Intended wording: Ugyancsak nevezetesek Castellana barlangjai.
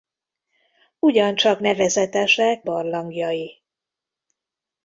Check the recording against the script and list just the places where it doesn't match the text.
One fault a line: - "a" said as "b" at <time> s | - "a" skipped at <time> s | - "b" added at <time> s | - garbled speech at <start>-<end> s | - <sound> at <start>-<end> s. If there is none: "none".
- "Castellana" skipped at 2.6 s